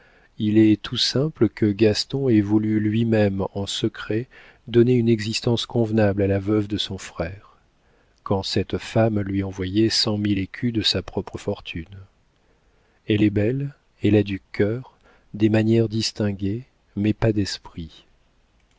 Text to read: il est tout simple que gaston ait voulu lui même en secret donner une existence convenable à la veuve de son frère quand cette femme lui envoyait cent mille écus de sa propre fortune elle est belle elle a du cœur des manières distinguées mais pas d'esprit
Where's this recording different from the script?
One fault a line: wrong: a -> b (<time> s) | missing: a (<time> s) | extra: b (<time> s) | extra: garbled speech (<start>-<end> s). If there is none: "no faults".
no faults